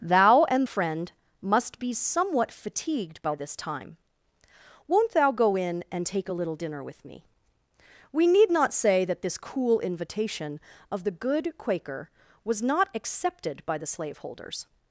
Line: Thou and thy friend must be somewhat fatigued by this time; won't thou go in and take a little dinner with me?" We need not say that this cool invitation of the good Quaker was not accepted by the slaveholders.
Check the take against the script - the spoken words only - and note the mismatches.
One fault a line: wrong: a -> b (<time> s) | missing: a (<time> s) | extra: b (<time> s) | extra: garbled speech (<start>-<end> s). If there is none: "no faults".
missing: thy (0.7 s)